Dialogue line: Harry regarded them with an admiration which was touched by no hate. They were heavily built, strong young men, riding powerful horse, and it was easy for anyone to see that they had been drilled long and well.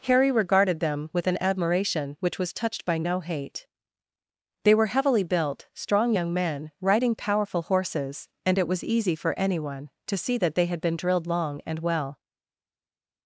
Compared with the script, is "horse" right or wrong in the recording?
wrong